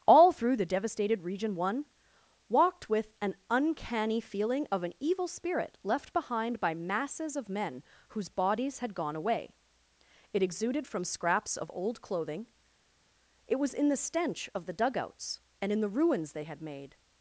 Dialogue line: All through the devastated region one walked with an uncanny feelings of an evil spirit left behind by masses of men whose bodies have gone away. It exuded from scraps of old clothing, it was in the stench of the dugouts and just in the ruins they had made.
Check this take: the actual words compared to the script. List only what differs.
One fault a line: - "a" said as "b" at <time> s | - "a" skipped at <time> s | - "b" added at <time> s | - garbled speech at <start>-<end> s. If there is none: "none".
- "feelings" said as "feeling" at 4.2 s
- "have" said as "had" at 8.8 s
- "just" skipped at 15.7 s